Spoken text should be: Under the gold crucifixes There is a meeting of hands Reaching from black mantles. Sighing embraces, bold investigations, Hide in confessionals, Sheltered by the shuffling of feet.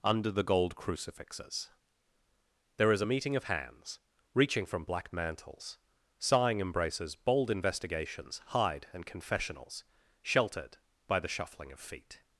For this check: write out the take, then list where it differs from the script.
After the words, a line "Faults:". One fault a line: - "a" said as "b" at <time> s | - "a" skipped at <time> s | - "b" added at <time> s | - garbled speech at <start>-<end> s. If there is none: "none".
Under the gold crucifixes There is a meeting of hands Reaching from black mantles. Sighing embraces, bold investigations, Hide and confessionals, Sheltered by the shuffling of feet.
Faults:
- "in" said as "and" at 8.9 s